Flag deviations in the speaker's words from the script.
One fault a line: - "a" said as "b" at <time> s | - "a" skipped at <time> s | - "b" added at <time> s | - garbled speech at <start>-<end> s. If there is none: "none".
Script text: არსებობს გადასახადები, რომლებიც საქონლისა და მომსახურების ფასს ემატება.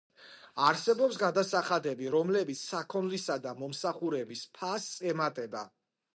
none